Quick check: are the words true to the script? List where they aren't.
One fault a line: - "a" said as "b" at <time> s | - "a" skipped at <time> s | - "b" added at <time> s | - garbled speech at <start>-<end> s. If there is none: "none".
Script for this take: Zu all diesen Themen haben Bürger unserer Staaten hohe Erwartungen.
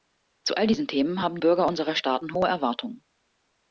none